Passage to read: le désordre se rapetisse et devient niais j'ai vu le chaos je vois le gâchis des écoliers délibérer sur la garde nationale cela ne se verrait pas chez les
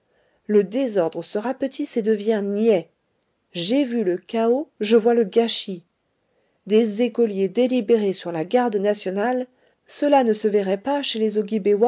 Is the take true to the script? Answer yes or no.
yes